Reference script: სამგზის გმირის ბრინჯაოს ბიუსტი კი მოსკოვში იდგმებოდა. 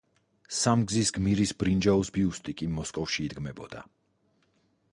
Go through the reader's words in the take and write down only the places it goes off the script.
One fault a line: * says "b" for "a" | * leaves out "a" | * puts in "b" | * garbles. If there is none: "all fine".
all fine